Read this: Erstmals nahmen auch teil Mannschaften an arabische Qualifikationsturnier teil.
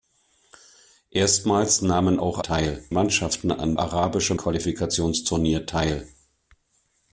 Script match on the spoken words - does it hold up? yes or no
yes